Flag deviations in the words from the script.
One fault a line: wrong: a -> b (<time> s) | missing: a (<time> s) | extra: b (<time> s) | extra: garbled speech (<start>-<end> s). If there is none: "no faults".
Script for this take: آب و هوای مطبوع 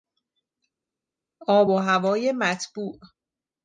no faults